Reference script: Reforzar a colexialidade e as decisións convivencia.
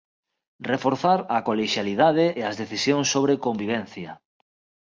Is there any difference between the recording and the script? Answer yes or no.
yes